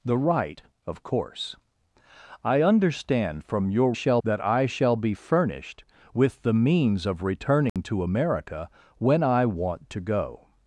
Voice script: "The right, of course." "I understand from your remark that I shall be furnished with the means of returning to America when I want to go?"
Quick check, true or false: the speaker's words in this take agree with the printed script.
false